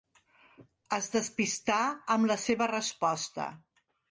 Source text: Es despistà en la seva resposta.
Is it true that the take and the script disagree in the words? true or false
true